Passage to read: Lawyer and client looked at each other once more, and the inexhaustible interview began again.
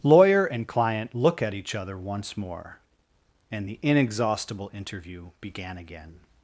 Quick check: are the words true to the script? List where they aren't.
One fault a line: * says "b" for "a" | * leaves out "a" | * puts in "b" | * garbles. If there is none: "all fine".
* says "look" for "looked"